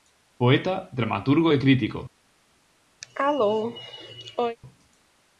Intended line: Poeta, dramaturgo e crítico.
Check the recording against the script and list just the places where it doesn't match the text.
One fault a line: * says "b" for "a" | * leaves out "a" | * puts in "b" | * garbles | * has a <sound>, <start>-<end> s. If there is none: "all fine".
* has a cough, 3.0-4.6 s